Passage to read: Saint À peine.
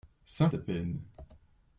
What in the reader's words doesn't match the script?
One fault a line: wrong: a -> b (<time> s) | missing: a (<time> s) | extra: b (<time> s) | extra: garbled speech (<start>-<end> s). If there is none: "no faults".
no faults